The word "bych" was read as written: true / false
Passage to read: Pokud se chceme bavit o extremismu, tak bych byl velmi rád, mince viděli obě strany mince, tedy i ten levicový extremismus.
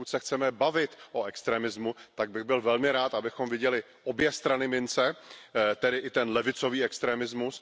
true